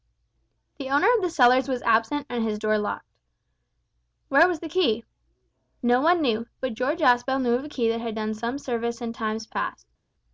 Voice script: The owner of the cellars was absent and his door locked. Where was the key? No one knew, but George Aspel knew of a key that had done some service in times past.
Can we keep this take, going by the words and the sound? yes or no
yes